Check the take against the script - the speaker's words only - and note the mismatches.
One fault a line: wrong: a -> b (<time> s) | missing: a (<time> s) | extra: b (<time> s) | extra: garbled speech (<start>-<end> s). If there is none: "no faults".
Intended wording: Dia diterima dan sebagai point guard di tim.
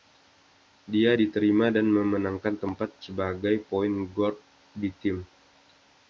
extra: memenangkan tempat (1.9 s)